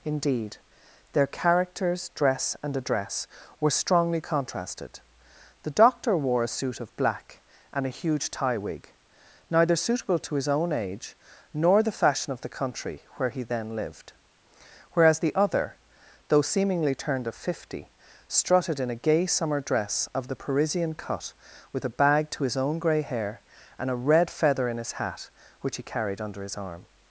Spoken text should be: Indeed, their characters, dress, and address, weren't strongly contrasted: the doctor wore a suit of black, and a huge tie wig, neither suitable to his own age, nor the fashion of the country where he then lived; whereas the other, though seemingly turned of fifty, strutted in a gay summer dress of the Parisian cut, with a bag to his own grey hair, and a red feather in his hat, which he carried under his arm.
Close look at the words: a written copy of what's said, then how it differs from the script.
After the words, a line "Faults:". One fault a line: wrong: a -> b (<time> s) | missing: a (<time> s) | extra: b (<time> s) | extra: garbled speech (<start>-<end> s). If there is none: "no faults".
Indeed, their characters, dress, and address, were strongly contrasted: the doctor wore a suit of black, and a huge tie wig, neither suitable to his own age, nor the fashion of the country where he then lived; whereas the other, though seemingly turned of fifty, strutted in a gay summer dress of the Parisian cut, with a bag to his own grey hair, and a red feather in his hat, which he carried under his arm.
Faults:
wrong: weren't -> were (3.6 s)